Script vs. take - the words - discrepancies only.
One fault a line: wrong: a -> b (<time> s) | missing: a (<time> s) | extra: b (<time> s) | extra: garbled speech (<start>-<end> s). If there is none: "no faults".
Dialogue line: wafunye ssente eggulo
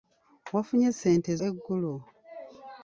no faults